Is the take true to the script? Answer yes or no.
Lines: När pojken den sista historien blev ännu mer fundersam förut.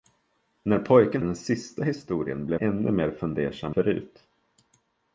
yes